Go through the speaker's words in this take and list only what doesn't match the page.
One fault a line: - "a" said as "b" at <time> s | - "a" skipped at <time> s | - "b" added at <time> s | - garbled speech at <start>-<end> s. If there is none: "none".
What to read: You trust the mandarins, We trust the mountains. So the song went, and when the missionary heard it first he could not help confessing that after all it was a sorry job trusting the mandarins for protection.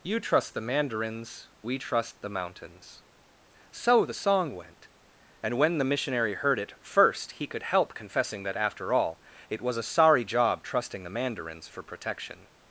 - "not" skipped at 7.6 s